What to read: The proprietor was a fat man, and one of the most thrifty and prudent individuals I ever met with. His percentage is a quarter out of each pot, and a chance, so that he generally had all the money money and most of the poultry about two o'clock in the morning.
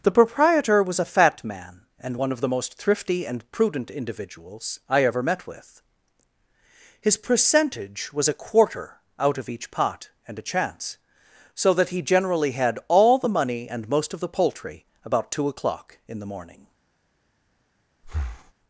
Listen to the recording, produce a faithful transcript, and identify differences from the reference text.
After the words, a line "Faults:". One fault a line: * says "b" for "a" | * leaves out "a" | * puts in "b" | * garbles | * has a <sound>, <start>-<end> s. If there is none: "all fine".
The proprietor was a fat man, and one of the most thrifty and prudent individuals I ever met with. His percentage was a quarter out of each pot, and a chance, so that he generally had all the money and most of the poultry about two o'clock in the morning.
Faults:
* says "was" for "is"
* leaves out "money"
* has a breath, 18.0-18.5 s